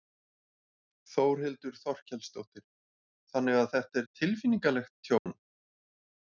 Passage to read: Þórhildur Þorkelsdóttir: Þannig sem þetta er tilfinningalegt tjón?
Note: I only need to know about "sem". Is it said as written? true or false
false